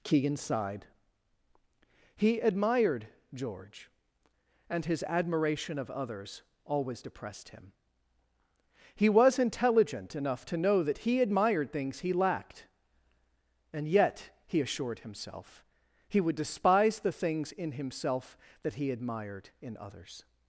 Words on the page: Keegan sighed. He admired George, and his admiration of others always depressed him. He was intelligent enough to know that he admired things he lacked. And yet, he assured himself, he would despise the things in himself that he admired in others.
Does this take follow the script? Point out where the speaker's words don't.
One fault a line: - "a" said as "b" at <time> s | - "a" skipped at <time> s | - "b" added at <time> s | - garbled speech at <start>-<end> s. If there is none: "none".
none